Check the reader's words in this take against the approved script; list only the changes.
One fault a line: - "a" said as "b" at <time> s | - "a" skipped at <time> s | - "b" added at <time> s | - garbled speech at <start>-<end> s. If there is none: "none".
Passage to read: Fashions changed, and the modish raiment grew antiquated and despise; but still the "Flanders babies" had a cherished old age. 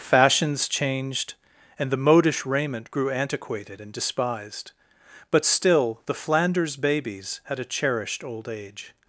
- "despise" said as "despised" at 3.9 s